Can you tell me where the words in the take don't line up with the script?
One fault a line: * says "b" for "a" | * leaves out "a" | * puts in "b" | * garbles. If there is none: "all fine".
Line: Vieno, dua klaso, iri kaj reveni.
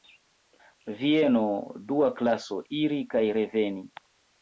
all fine